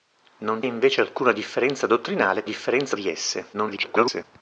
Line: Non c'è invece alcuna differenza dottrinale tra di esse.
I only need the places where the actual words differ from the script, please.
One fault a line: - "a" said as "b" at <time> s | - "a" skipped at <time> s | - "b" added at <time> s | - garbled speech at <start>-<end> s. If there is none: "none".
- "c'è" skipped at 0.6 s
- "tra" said as "differenza" at 2.4 s
- garbled speech at 3.5-4.2 s